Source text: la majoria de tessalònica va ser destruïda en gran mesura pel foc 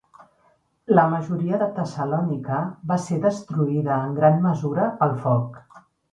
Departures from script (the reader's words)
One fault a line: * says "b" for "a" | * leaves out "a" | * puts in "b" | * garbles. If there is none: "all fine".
all fine